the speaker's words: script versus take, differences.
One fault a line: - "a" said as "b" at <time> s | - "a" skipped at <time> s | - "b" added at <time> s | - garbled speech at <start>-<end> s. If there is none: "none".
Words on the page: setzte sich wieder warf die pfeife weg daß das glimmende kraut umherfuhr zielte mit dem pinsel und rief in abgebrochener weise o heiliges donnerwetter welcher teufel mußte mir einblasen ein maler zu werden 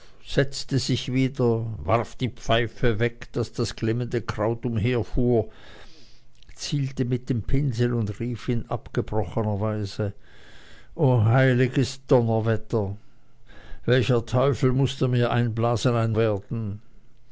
- "maler zu" skipped at 16.2 s